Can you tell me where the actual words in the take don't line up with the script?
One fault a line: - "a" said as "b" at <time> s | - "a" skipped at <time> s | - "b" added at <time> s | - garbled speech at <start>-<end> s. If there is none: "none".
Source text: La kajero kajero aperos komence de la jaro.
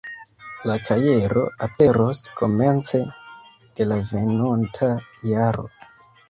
- "kajero" skipped at 1.4 s
- "venonta" added at 4.1 s